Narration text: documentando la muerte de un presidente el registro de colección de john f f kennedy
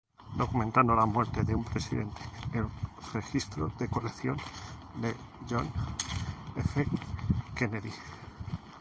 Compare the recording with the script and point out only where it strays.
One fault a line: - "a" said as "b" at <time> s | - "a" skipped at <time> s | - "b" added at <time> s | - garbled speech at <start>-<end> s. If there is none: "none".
- "f" skipped at 6.9 s